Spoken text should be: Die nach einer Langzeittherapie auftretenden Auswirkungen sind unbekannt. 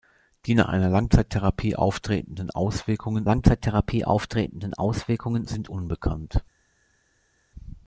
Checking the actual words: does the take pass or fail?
fail